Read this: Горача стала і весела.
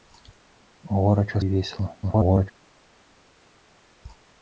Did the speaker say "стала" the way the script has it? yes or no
no